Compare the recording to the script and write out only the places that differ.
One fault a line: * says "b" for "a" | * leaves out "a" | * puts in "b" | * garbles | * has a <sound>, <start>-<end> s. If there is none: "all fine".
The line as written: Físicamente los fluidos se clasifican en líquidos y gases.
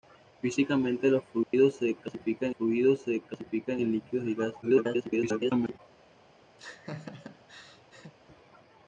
* has a dropout, 1.4-1.5 s
* puts in "fluidos se clasifican"
* garbles
* has a laugh, 6.6-8.1 s